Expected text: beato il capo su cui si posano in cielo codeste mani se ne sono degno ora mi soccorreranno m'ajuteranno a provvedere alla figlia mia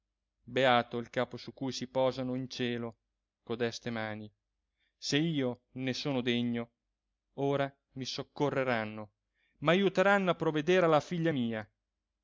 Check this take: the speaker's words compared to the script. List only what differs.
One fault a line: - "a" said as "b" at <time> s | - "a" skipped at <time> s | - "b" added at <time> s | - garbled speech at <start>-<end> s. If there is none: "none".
- "io" added at 5.2 s